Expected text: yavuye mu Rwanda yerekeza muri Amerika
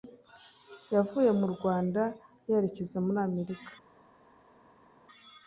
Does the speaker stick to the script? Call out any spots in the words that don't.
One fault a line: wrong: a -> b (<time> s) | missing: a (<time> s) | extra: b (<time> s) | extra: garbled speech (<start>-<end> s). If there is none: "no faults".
no faults